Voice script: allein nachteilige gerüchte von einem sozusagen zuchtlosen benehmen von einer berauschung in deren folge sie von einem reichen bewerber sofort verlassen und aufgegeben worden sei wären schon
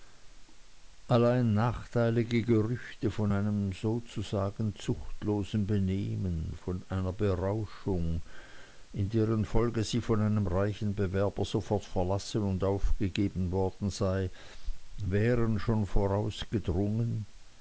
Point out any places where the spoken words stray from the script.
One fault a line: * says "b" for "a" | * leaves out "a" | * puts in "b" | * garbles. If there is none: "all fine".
all fine